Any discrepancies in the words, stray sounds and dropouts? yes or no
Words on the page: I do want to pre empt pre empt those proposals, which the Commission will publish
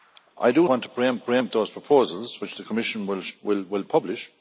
no